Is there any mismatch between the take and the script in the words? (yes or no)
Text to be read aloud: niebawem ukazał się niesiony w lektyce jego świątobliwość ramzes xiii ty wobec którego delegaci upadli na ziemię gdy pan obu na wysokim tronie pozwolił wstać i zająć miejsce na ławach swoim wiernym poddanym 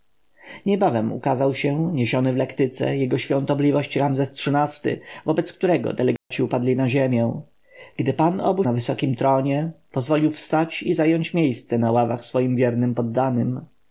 no